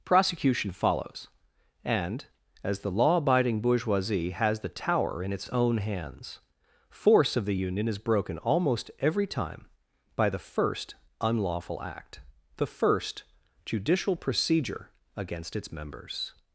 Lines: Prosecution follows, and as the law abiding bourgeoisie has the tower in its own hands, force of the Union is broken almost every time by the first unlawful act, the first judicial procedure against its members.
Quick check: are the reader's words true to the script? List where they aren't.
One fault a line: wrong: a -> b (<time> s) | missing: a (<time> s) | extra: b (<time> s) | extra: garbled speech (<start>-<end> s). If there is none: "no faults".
no faults